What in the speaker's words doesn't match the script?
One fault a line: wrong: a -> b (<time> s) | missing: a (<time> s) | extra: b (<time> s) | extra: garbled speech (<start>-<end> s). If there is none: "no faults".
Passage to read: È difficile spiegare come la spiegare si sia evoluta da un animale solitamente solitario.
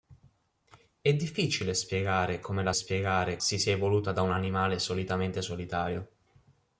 no faults